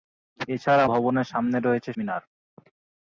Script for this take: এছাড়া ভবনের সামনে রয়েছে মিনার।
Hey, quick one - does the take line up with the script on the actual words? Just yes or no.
yes